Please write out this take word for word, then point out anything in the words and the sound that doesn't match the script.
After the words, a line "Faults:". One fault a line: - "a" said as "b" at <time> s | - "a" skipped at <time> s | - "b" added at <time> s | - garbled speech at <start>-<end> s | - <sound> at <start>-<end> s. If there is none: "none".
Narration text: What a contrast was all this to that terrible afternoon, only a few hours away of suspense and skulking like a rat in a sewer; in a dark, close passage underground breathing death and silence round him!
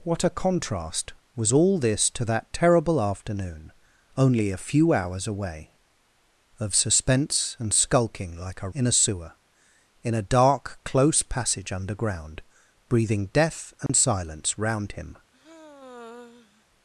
What a contrast was all this to that terrible afternoon, only a few hours away of suspense and skulking like a in a sewer; in a dark, close passage underground breathing death and silence round him!
Faults:
- "rat" skipped at 8.7 s
- dropout at 13.9-13.9 s
- sigh at 15.3-16.6 s